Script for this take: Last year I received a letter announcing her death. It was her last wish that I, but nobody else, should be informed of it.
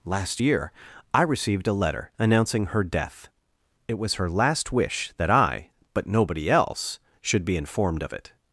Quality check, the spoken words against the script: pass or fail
pass